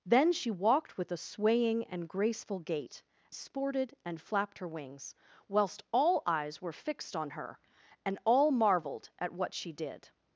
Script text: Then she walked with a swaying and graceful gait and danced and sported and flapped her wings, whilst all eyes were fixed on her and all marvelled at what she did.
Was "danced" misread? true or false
true